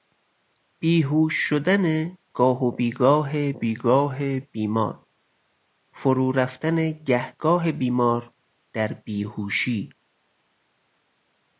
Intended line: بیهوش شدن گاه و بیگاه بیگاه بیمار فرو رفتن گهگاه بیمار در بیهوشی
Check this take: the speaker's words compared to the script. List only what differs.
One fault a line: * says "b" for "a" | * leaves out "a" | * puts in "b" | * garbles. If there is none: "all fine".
all fine